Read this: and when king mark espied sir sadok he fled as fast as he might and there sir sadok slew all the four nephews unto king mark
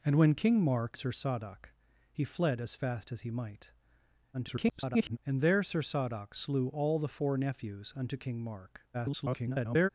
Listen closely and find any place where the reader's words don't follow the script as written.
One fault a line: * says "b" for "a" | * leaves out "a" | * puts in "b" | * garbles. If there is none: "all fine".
* leaves out "espied"
* garbles
* garbles